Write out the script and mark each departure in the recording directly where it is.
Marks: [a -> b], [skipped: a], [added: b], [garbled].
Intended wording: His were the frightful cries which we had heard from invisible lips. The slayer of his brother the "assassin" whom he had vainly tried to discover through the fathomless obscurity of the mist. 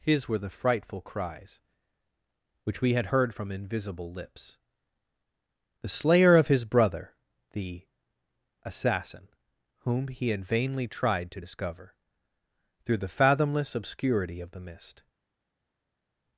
His were the frightful cries which we had heard from invisible lips. The slayer of his brother the "assassin" whom he had vainly tried to discover through the fathomless obscurity of the mist.